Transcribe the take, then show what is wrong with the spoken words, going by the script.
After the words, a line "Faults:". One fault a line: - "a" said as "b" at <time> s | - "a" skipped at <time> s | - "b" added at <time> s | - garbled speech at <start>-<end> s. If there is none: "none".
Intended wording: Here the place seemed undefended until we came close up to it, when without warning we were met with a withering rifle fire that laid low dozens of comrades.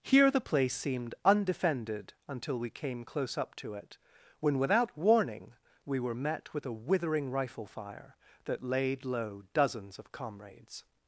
Here the place seemed undefended until we came close up to it, when without warning we were met with a withering rifle fire that laid low dozens of comrades.
Faults:
none